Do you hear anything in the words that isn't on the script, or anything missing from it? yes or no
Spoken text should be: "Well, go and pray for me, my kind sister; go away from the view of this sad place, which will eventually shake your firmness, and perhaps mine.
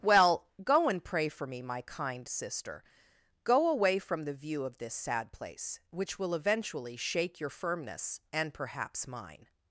no